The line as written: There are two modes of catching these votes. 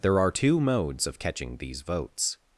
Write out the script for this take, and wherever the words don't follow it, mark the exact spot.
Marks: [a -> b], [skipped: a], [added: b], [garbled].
There are two modes of catching these votes.